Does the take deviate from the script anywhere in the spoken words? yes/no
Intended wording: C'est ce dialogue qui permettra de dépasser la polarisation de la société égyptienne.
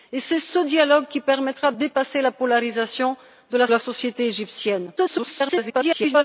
yes